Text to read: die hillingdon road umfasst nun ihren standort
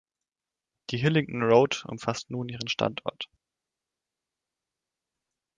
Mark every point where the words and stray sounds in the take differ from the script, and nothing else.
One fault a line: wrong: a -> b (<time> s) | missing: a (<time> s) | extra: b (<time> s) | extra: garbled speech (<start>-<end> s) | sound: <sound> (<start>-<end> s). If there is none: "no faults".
no faults